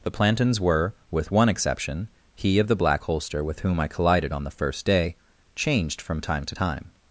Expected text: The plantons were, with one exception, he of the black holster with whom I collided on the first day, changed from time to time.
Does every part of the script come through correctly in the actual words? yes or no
yes